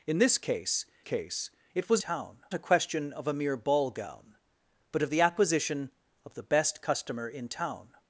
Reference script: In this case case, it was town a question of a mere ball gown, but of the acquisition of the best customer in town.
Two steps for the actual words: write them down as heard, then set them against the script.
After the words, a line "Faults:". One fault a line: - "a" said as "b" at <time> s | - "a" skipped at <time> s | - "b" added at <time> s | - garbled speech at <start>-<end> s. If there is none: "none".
In this case case, it was town a question of a mere ball gown, but of the acquisition of the best customer in town.
Faults:
none